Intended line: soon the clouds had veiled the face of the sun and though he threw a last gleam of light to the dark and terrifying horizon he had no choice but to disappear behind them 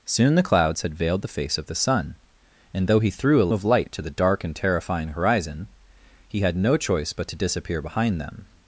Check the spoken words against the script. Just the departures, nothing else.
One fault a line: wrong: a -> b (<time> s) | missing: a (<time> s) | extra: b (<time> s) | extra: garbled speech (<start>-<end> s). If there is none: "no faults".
missing: last gleam (3.5 s)